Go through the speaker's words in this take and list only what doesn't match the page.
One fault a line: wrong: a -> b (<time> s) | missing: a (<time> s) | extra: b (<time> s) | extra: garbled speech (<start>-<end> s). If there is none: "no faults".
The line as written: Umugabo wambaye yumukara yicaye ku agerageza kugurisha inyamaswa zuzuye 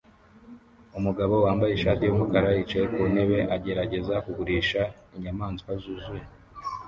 extra: ishati (1.7 s)
extra: ntebe (3.1 s)